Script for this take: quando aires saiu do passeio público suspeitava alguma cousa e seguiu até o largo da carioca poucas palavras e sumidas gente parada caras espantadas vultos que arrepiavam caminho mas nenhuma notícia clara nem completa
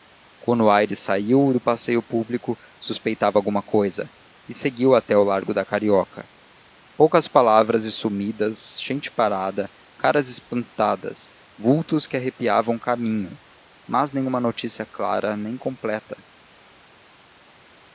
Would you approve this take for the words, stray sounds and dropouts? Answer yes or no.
yes